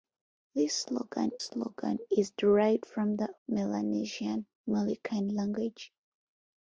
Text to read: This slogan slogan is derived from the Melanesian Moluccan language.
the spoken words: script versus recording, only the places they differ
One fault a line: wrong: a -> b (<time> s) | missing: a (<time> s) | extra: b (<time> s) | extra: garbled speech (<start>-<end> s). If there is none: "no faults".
no faults